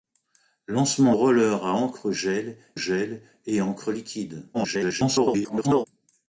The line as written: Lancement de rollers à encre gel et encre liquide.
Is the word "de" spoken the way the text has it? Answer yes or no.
no